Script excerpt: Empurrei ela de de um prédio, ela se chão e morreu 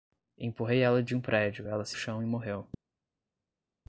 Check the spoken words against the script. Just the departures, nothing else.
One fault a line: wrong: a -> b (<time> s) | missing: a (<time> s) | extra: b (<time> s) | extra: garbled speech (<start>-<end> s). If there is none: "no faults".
no faults